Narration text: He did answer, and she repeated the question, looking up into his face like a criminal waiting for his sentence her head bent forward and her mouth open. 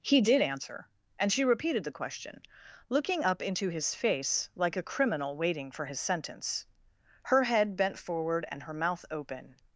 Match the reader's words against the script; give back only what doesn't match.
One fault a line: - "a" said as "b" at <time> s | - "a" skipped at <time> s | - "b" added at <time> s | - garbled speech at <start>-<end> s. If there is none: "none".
none